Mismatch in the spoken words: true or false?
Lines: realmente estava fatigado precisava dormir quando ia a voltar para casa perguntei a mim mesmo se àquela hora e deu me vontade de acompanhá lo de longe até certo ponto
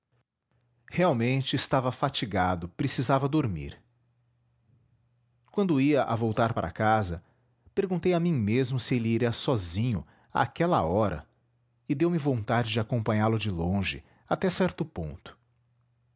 true